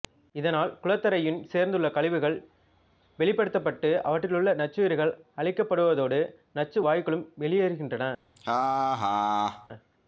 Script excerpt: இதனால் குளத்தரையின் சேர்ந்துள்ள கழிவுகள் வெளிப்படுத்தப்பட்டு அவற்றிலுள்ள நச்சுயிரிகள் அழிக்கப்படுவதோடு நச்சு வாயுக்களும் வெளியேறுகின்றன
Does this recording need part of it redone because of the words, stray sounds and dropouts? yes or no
yes